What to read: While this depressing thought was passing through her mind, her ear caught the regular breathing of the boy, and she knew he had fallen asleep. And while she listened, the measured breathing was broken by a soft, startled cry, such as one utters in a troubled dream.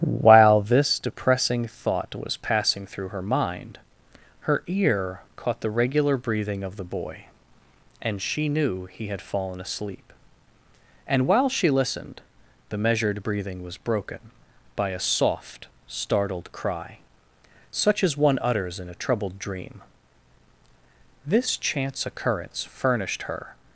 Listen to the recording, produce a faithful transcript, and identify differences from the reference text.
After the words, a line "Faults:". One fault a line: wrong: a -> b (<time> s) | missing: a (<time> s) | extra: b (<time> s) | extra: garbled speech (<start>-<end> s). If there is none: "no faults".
While this depressing thought was passing through her mind, her ear caught the regular breathing of the boy, and she knew he had fallen asleep. And while she listened, the measured breathing was broken by a soft, startled cry, such as one utters in a troubled dream. This chance occurrence furnished her
Faults:
extra: This chance occurrence furnished her (21.3 s)